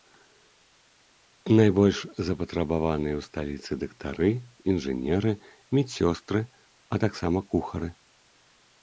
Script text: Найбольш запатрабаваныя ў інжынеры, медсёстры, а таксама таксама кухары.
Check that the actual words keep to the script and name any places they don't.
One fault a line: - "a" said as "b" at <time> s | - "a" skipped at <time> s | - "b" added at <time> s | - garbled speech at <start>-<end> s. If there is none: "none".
- "сталіцы дактары" added at 3.3 s
- "таксама" skipped at 7.4 s